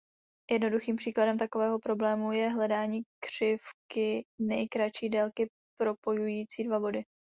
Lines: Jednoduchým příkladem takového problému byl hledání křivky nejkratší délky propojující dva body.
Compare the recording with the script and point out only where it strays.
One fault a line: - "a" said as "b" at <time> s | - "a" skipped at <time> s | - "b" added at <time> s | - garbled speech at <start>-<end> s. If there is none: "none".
- "byl" said as "je" at 2.3 s